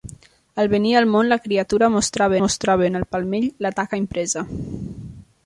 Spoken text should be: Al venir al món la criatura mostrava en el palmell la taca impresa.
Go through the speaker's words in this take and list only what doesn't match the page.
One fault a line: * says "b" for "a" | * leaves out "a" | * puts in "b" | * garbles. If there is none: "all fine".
* puts in "mostrava"